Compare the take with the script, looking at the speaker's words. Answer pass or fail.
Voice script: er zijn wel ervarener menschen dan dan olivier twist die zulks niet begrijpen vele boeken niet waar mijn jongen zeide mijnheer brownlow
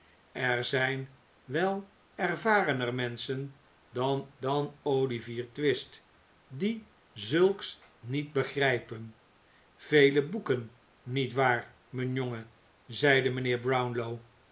pass